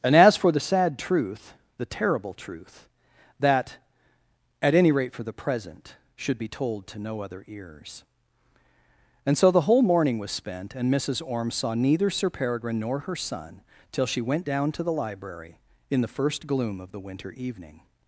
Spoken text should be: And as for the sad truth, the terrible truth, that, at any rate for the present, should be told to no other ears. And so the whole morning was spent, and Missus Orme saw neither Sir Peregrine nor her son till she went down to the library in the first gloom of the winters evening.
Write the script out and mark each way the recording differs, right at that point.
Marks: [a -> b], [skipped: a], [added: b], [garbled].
And as for the sad truth, the terrible truth, that, at any rate for the present, should be told to no other ears. And so the whole morning was spent, and Missus Orme saw neither Sir Peregrine nor her son till she went down to the library in the first gloom of the [winters -> winter] evening.